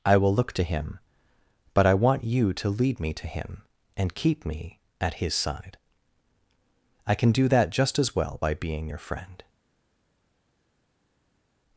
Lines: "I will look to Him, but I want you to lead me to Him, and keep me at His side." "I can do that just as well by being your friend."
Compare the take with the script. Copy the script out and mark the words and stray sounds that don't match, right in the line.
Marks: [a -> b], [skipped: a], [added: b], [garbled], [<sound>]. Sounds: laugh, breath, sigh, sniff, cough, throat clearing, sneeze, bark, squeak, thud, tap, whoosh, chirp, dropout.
"I will look to Him, but I want you to lead me to Him, and keep me at His side." "I can do that just as well by being your friend."